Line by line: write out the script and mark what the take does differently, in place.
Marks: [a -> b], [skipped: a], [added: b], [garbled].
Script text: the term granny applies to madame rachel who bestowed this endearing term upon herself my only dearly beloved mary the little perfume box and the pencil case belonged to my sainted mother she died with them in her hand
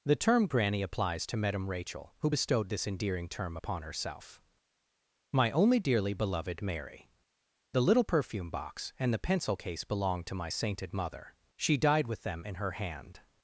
the term granny applies to madame rachel who bestowed this endearing term upon herself my only dearly beloved mary the little perfume box and the pencil case belonged to my sainted mother she died with them in her hand